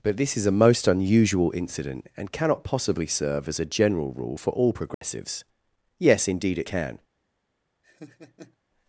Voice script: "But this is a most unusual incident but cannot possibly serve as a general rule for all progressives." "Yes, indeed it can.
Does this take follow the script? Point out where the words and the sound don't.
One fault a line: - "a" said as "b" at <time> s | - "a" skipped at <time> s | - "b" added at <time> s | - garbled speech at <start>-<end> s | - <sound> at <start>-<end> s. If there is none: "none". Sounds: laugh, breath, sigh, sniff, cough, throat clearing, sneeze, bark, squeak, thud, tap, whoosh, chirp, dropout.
- "but" said as "and" at 2.2 s
- dropout at 4.9-5.0 s
- laugh at 7.8-8.6 s